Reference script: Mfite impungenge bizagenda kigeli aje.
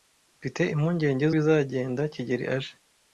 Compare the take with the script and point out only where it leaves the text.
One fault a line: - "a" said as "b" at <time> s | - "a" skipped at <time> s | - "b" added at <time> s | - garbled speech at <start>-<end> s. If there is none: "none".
none